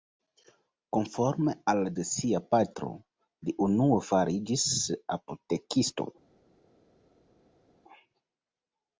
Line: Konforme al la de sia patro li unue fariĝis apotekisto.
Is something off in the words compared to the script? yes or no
no